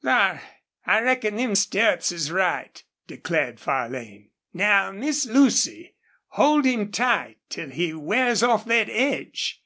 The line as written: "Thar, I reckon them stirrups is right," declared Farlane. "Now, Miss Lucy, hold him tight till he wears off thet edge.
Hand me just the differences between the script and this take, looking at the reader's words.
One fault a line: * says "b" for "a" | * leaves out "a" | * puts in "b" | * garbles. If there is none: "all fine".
all fine